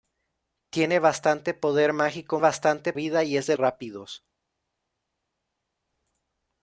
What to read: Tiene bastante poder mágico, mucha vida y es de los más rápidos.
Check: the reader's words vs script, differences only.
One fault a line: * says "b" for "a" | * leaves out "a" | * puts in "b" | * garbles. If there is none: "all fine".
* says "bastante" for "mucha"
* leaves out "los más"